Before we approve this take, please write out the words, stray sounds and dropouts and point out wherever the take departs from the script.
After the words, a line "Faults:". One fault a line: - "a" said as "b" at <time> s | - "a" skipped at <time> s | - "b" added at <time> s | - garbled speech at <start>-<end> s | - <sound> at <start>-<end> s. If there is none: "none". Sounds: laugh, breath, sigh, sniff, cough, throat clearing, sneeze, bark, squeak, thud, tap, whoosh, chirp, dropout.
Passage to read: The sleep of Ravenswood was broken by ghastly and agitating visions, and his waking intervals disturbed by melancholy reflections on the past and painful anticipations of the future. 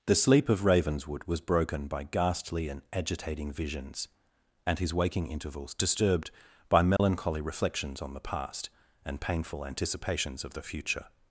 The sleep of Ravenswood was broken by ghastly and agitating visions, and his waking intervals disturbed by melancholy reflections on the past and painful anticipations of the future.
Faults:
- dropout at 7.0-7.0 s